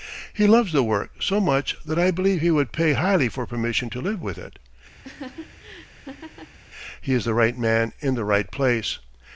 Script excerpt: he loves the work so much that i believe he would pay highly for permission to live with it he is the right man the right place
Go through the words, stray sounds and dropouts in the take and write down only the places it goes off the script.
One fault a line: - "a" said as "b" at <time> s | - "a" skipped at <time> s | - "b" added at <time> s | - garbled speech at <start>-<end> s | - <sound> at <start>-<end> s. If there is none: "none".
- laugh at 5.0-6.6 s
- "in" added at 8.0 s